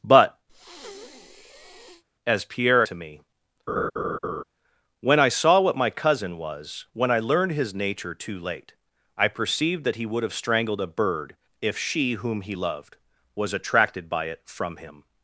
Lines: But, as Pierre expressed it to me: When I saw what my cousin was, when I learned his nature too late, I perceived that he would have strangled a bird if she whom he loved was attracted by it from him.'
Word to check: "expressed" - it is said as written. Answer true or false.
false